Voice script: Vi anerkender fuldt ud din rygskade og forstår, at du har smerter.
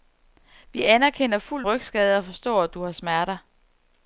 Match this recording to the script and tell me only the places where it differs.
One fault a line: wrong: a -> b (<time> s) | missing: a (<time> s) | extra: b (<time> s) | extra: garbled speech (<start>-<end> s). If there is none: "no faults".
missing: ud din (1.7 s)